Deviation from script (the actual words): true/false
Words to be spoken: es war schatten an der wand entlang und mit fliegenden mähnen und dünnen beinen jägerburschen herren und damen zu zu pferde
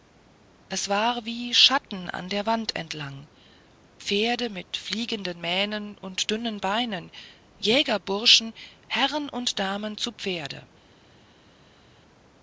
true